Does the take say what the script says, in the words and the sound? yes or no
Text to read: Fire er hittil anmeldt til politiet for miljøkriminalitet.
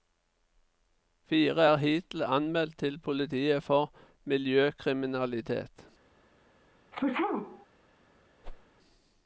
no